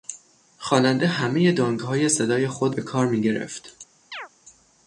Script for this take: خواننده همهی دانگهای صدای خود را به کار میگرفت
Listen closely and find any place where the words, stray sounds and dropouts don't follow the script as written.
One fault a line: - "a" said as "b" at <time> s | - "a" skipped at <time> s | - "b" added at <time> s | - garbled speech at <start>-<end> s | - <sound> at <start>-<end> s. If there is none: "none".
- "را" skipped at 2.8 s
- chirp at 4.1-4.3 s